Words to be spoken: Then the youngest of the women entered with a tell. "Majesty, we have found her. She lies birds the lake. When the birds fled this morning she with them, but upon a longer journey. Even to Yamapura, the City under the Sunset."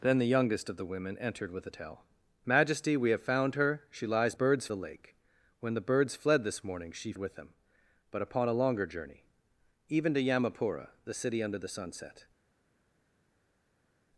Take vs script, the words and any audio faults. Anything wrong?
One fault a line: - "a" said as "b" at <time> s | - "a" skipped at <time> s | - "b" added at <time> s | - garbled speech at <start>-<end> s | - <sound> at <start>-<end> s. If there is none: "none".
none